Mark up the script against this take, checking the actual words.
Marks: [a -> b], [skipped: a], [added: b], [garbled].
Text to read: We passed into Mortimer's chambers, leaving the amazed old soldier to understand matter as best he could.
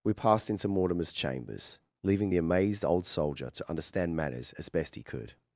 We passed into Mortimer's chambers, leaving the amazed old soldier to understand [matter -> matters] as best he could.